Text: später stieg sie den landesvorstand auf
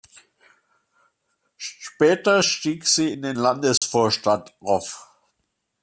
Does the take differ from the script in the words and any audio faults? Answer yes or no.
yes